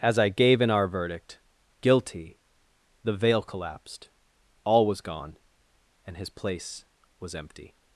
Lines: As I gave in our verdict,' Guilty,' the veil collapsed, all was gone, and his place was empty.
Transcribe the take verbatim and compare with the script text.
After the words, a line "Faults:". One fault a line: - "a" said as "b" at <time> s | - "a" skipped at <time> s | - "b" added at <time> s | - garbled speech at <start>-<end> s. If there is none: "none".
As I gave in our verdict,' Guilty,' the veil collapsed, all was gone, and his place was empty.
Faults:
none